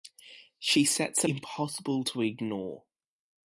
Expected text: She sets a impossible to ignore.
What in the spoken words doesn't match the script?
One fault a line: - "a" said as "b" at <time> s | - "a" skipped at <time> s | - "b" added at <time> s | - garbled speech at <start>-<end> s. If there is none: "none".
none